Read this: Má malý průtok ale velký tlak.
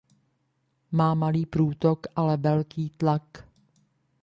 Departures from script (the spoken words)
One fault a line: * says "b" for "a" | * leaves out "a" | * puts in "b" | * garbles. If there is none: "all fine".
all fine